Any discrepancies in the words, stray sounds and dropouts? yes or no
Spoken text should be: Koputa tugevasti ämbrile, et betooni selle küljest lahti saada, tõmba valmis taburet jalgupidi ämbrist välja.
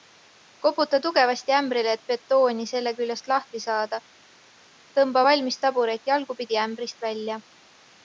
no